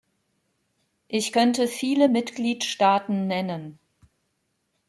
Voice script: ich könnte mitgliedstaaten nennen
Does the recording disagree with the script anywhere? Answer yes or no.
yes